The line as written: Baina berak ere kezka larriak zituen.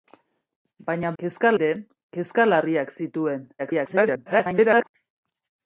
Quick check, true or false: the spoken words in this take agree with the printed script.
false